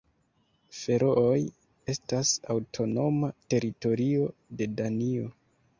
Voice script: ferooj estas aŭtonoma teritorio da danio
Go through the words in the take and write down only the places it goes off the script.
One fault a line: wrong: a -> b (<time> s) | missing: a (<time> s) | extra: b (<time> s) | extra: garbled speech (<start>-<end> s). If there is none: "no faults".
wrong: da -> de (4.6 s)